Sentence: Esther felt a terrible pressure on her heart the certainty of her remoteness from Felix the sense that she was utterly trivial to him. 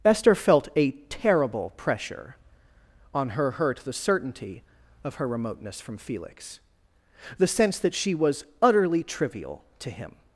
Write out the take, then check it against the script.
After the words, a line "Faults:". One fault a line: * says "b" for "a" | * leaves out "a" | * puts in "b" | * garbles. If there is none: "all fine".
Esther felt a terrible pressure on her hurt the certainty of her remoteness from Felix the sense that she was utterly trivial to him.
Faults:
* says "hurt" for "heart"